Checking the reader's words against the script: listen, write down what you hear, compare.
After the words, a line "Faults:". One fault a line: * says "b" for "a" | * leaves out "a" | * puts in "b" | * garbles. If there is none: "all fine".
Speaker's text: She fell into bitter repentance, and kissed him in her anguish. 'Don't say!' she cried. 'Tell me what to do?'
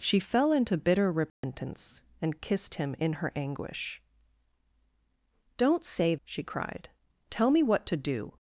She fell into bitter repentance, and kissed him in her anguish. 'Don't say!' she cried. 'Tell me what to do?'
Faults:
all fine